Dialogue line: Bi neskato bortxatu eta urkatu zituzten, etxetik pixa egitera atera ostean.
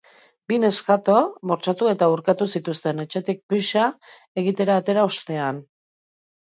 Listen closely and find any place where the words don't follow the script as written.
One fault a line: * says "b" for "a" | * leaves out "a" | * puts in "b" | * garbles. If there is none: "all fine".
all fine